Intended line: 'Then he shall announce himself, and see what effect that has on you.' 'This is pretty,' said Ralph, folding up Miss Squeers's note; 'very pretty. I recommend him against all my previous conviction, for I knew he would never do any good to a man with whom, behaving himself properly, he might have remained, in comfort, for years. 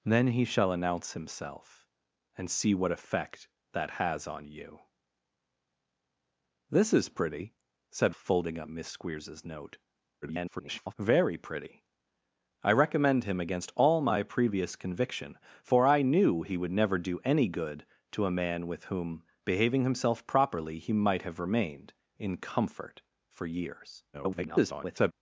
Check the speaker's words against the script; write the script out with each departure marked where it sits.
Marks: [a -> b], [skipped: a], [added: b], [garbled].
'Then he shall announce himself, and see what effect that has on you.' 'This is pretty,' said [skipped: Ralph,] folding up Miss Squeers's note; [garbled] 'very pretty. I recommend him against all my previous conviction, for I knew he would never do any good to a man with whom, behaving himself properly, he might have remained, in comfort, for years. [garbled]